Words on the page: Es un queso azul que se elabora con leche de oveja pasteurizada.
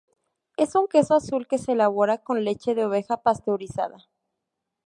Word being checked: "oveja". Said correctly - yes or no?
yes